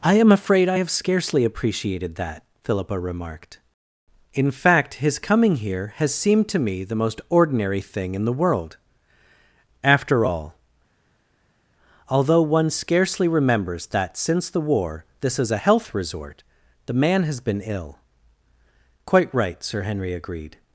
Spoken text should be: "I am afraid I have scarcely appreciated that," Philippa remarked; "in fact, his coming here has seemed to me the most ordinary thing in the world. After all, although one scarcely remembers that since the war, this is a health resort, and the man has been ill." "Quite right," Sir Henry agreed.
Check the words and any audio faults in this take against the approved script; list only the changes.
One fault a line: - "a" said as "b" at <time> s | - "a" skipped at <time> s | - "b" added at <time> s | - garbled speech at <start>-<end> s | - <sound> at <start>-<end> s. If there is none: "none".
- "and" skipped at 16.4 s